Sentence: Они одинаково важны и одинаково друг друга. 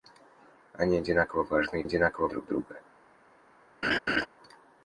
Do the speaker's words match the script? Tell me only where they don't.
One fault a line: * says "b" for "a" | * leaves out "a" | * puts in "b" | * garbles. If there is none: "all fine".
all fine